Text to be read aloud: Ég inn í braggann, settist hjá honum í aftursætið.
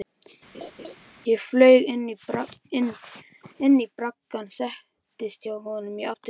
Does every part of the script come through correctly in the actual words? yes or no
no